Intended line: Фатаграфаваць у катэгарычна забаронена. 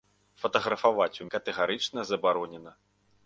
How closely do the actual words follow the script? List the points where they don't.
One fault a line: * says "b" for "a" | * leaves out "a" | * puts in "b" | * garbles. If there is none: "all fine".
all fine